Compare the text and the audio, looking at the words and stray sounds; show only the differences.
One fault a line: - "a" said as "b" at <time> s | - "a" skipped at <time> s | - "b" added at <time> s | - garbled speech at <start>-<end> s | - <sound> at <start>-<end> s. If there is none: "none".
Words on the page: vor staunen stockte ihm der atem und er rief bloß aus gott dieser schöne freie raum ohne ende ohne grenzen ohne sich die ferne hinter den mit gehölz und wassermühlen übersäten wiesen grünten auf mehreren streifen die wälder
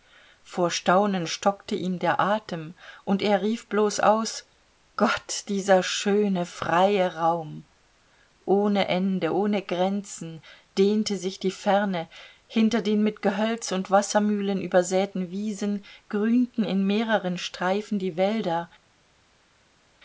- "ohne" said as "dehnte" at 10.8 s
- "auf" said as "in" at 16.6 s